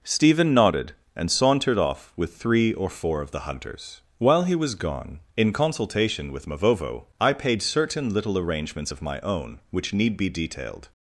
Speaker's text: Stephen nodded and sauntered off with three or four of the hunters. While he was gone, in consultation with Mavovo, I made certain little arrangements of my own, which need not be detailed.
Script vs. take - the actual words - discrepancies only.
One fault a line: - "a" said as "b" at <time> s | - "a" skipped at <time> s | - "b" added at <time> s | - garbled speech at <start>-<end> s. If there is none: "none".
- "made" said as "paid" at 7.3 s
- "not" skipped at 10.2 s